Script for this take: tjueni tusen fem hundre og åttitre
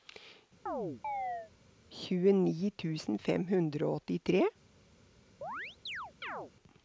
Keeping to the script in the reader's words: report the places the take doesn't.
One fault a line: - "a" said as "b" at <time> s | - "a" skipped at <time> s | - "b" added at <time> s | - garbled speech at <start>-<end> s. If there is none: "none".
none